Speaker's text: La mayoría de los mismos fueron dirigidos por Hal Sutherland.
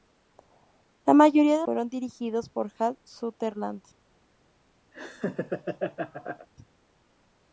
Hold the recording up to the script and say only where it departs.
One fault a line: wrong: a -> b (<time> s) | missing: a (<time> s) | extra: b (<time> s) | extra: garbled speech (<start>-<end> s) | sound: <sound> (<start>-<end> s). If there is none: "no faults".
missing: los mismos (1.7 s)
sound: laugh (4.9-6.5 s)